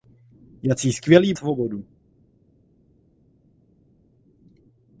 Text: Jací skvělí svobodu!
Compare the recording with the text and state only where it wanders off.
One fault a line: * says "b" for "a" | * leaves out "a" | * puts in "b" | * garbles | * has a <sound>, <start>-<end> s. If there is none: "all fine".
all fine